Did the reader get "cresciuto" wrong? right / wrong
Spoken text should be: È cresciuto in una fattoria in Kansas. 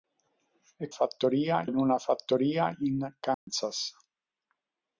wrong